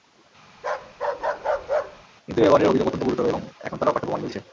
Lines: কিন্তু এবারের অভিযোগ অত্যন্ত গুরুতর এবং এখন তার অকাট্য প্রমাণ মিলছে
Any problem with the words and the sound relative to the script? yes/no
yes